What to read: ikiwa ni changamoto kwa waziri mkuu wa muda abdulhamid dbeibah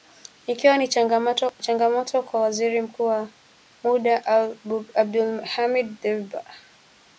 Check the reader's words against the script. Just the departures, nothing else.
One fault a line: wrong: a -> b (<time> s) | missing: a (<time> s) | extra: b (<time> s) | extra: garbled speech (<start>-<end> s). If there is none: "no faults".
no faults